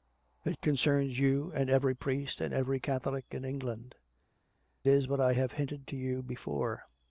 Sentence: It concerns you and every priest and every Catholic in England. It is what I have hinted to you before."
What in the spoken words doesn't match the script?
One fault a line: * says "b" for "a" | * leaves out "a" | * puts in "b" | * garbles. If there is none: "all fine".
* leaves out "It"